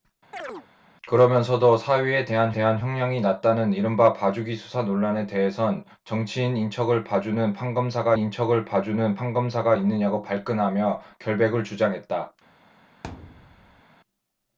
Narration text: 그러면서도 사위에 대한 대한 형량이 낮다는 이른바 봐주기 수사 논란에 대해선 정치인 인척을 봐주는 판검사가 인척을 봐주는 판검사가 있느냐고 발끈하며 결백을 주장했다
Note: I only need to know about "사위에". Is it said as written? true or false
true